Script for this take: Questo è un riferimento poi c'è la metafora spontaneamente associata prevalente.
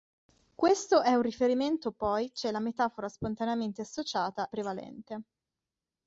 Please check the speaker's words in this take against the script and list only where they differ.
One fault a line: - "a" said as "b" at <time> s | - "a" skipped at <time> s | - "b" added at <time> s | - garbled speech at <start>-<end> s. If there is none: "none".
none